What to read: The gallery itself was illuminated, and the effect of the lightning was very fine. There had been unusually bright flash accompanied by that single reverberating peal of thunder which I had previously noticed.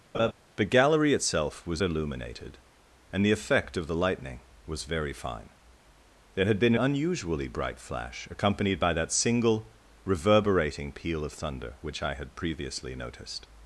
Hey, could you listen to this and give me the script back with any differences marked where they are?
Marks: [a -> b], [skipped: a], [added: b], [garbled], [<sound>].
[laugh] The gallery itself was illuminated, and the effect of the lightning was very fine. There had been unusually bright flash accompanied by that single reverberating peal of thunder which I had previously noticed.